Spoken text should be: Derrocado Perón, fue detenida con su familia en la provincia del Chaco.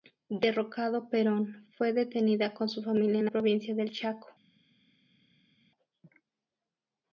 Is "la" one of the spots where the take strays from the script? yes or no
yes